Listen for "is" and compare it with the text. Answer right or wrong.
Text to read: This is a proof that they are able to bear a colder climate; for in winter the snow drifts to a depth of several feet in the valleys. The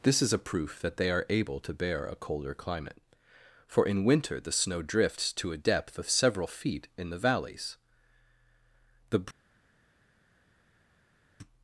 right